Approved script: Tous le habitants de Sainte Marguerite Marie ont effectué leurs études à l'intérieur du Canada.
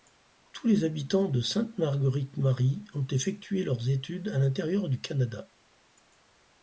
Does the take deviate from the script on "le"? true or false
true